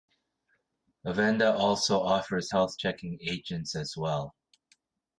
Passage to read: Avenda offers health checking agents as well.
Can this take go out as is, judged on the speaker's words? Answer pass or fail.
fail